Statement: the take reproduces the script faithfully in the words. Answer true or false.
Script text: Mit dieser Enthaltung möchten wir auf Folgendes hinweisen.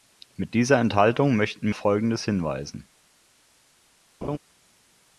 false